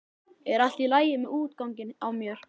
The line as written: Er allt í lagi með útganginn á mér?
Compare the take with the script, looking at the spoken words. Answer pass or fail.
pass